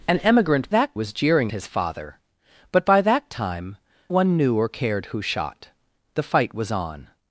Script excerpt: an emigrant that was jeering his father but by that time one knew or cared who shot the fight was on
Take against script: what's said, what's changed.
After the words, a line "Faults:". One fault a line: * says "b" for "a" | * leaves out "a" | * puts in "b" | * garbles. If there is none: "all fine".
an emigrant that was jeering his father but by that time one knew or cared who shot the fight was on
Faults:
all fine